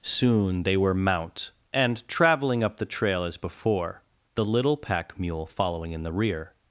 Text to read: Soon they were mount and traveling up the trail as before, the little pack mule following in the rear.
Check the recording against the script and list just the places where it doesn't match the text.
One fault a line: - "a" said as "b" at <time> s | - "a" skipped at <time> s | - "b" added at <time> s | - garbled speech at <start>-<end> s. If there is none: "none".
none